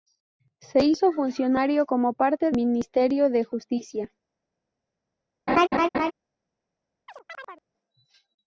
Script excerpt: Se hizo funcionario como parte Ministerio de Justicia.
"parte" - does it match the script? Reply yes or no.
yes